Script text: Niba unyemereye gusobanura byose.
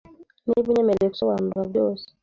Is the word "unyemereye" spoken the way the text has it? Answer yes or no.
yes